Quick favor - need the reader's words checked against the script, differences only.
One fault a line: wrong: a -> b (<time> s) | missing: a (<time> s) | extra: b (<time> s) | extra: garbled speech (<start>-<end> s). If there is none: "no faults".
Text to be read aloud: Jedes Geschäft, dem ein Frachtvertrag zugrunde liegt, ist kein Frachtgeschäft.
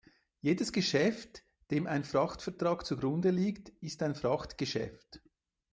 wrong: kein -> ein (4.0 s)